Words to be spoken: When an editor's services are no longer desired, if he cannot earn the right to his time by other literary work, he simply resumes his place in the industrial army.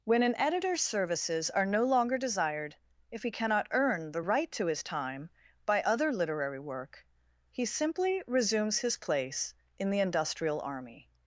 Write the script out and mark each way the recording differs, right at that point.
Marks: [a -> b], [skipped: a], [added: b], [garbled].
When an editor's services are no longer desired, if he cannot earn the right to his time by other literary work, he simply resumes his place in the industrial army.